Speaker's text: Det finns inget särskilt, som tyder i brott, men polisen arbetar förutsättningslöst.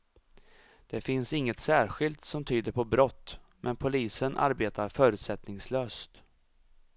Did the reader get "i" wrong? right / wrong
wrong